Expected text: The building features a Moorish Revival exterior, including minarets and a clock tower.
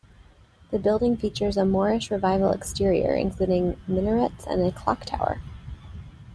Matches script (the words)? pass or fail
pass